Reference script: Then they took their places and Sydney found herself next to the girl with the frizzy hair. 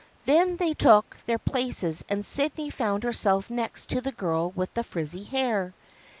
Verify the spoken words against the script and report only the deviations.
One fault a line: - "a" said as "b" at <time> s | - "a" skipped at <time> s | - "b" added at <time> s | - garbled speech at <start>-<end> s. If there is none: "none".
none